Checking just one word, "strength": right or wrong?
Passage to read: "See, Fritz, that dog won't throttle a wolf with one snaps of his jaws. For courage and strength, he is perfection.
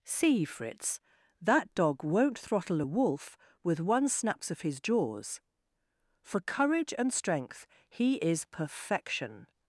right